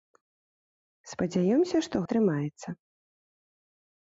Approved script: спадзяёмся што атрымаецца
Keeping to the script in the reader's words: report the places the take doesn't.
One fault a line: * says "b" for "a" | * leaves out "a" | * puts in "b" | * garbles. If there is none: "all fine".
all fine